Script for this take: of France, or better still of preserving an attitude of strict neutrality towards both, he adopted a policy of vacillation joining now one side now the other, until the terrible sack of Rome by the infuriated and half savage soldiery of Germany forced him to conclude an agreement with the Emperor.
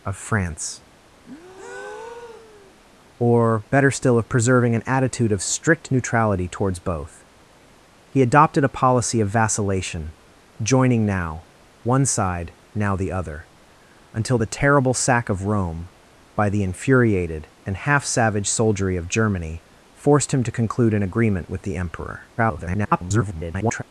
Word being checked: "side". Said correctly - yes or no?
yes